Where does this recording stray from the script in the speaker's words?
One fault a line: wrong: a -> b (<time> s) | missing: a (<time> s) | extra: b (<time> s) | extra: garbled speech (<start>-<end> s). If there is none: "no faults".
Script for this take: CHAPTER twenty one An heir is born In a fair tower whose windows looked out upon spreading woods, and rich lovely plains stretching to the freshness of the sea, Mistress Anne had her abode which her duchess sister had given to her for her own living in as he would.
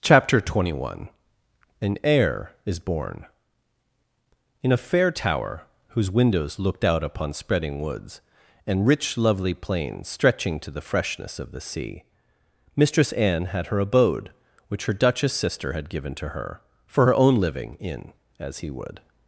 no faults